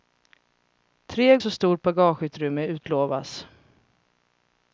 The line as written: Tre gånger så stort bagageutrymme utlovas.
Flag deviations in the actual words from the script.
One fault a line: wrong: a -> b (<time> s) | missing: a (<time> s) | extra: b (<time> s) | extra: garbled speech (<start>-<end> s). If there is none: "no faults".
missing: gånger (1.4 s)